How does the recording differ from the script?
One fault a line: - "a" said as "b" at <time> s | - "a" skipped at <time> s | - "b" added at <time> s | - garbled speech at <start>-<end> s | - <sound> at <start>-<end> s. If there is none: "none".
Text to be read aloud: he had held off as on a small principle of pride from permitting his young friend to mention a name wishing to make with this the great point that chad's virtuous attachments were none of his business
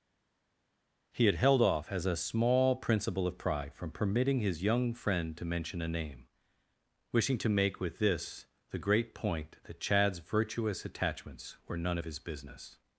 - "on" skipped at 2.1 s